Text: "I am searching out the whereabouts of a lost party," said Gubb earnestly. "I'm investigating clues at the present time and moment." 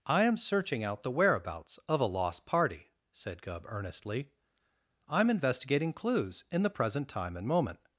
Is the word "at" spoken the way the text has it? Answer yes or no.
no